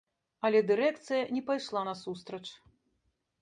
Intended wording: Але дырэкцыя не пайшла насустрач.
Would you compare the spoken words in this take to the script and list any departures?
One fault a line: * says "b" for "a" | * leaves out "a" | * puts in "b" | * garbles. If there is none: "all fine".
all fine